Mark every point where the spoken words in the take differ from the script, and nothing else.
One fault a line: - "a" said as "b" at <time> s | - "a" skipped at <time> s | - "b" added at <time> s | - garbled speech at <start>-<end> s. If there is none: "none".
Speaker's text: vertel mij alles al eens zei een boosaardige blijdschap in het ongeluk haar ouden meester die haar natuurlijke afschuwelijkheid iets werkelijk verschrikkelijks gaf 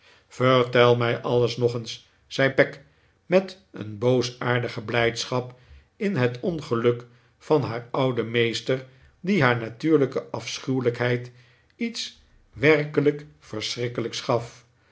- "al" said as "nog" at 1.6 s
- "peg met" added at 2.5 s
- "van" added at 7.4 s